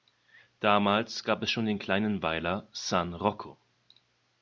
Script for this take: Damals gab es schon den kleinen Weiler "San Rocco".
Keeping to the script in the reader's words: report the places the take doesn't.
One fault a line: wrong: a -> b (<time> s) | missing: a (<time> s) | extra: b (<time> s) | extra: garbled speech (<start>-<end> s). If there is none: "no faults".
no faults